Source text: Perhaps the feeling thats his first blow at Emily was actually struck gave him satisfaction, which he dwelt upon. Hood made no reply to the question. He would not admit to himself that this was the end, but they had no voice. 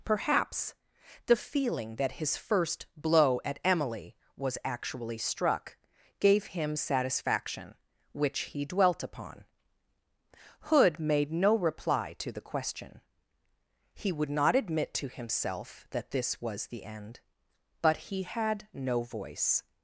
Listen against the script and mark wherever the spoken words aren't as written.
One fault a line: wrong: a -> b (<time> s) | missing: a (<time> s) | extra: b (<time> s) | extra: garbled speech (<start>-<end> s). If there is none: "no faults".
wrong: thats -> that (2.0 s)
wrong: they -> he (18.0 s)